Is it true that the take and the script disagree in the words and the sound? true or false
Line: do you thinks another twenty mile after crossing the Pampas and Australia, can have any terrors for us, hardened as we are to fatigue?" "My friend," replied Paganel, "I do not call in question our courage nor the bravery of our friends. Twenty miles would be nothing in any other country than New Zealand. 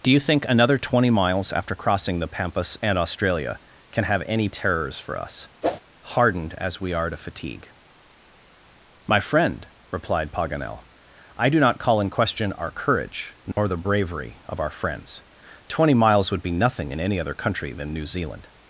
true